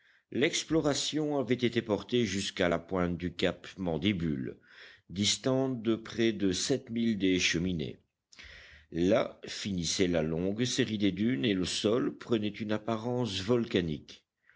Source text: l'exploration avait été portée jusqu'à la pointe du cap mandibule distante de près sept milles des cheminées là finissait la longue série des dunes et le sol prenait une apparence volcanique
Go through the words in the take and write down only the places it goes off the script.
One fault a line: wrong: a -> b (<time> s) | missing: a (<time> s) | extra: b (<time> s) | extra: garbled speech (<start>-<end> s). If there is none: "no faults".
extra: de (6.3 s)